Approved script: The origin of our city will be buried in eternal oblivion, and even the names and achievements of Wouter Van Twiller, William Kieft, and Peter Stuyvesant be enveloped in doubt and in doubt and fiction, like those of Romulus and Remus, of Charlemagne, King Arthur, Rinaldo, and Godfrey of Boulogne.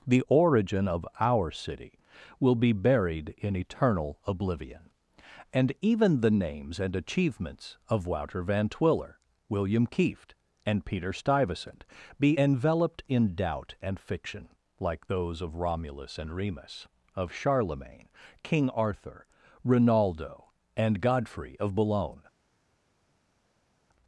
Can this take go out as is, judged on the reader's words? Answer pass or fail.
fail